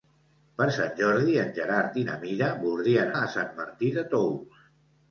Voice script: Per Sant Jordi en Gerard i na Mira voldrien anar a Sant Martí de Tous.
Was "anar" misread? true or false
true